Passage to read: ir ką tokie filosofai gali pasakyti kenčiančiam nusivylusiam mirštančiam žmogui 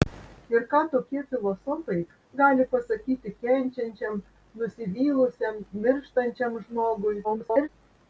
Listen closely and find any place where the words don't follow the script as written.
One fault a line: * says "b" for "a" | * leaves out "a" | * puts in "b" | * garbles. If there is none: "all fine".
* garbles